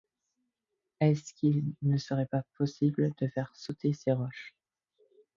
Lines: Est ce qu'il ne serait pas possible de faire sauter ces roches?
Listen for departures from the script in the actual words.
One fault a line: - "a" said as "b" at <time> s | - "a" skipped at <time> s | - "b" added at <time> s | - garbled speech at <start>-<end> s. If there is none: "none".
none